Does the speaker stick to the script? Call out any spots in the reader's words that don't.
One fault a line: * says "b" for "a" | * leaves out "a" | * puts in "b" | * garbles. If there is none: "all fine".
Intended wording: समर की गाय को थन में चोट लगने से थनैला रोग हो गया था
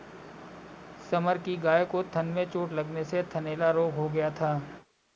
all fine